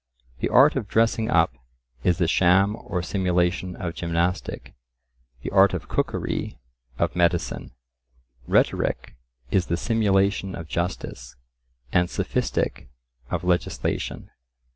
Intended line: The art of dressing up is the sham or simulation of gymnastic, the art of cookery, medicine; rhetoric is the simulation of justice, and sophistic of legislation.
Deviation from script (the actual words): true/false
true